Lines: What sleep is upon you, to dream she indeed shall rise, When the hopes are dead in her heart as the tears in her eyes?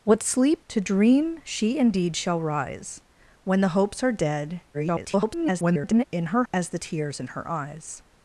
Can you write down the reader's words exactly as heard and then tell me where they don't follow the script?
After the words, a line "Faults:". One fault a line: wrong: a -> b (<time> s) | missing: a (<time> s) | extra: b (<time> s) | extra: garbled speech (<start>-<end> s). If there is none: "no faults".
What sleep to dream she indeed shall rise, When the hopes are dead [garbled] in her as the tears in her eyes?
Faults:
missing: is upon you (0.7 s)
extra: garbled speech (4.7-6.0 s)
missing: heart (6.4 s)